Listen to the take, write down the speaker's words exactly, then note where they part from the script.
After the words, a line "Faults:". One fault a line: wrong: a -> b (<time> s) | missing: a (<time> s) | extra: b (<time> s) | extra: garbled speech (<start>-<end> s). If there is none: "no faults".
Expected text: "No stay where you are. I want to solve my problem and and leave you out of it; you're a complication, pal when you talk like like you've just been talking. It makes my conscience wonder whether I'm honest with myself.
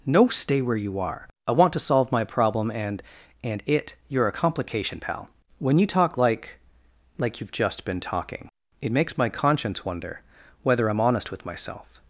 "No stay where you are. I want to solve my problem and and it; you're a complication, pal when you talk like like you've just been talking. It makes my conscience wonder whether I'm honest with myself.
Faults:
missing: leave you out of (3.6 s)